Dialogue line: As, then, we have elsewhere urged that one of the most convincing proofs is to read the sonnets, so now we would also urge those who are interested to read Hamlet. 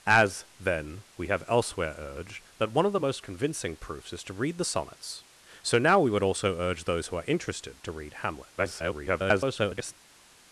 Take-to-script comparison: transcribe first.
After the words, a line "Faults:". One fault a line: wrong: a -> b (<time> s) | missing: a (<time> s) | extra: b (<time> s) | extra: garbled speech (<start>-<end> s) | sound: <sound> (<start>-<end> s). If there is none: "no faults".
As, then, we have elsewhere urged that one of the most convincing proofs is to read the sonnets, so now we would also urge those who are interested to read Hamlet. [garbled]
Faults:
extra: garbled speech (8.6-9.9 s)